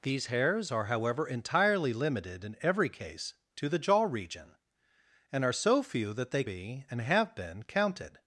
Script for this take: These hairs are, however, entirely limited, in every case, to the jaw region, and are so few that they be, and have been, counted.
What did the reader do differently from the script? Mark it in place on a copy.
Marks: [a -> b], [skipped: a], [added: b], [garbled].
These hairs are, however, entirely limited, in every case, to the jaw region, and are so few that they be, and have been, counted.